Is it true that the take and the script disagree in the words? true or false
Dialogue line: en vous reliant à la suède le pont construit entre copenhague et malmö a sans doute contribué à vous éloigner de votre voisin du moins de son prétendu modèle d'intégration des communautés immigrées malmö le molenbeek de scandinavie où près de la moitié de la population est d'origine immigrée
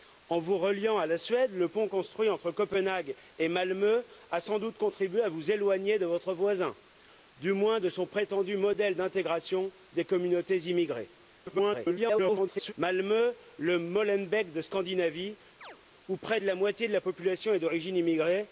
true